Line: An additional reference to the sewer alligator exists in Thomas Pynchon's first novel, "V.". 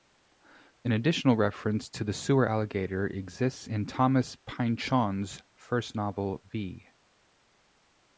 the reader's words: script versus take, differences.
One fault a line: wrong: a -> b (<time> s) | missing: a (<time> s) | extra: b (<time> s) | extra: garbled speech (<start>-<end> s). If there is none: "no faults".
no faults